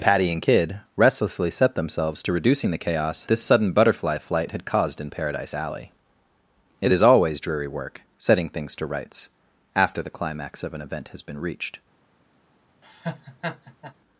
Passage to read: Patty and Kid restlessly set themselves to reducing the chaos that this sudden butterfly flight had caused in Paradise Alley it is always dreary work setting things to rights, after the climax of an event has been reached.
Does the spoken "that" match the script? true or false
false